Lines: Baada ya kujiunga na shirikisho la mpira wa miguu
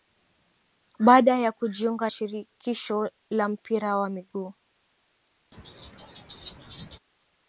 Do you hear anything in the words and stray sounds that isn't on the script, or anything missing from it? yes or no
yes